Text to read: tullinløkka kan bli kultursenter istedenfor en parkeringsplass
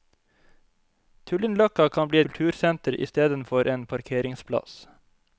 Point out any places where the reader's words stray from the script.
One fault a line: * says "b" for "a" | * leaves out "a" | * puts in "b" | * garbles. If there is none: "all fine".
all fine